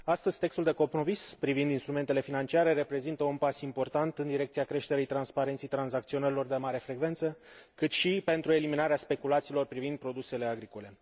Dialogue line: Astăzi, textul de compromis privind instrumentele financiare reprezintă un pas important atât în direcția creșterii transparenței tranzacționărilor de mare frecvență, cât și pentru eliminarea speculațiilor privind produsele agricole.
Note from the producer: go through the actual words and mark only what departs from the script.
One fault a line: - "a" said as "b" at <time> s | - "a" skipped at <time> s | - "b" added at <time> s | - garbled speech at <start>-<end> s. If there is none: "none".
- "atât" skipped at 4.2 s